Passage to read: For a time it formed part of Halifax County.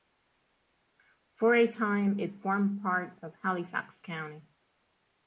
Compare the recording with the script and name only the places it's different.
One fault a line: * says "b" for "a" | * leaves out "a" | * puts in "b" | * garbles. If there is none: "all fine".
all fine